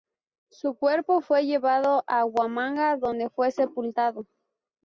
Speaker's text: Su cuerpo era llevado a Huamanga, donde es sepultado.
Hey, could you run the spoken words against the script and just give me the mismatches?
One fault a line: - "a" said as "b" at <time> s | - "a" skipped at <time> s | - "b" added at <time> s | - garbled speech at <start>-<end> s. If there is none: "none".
- "era" said as "fue" at 1.2 s
- "es" said as "fue" at 3.3 s